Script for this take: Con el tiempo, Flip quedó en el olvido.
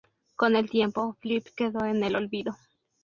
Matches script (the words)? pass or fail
pass